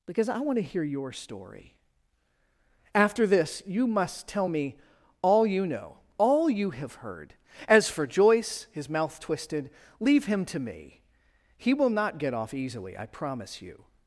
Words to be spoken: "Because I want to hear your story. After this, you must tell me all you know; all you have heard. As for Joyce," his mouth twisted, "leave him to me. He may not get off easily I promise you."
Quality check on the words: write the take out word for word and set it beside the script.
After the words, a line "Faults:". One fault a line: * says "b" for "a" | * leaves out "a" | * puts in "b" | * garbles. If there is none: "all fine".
"Because I want to hear your story. After this, you must tell me all you know; all you have heard. As for Joyce," his mouth twisted, "leave him to me. He will not get off easily I promise you."
Faults:
* says "will" for "may"